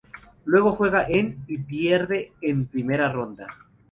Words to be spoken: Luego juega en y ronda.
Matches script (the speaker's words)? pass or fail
fail